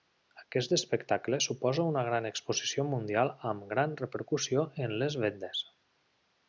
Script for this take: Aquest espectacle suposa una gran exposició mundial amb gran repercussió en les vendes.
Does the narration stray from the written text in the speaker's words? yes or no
no